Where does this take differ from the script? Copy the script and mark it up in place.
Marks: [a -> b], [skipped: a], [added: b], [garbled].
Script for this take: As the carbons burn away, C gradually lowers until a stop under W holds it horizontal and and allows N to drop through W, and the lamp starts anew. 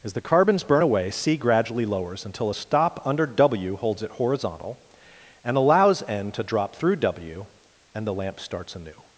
As the carbons burn away, C gradually lowers until a stop under W holds it horizontal and [skipped: and] allows N to drop through W, and the lamp starts anew.